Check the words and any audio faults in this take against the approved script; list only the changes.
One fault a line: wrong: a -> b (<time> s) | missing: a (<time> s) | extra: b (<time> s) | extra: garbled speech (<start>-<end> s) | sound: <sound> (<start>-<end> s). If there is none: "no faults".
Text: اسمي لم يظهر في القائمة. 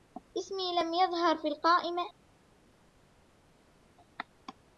no faults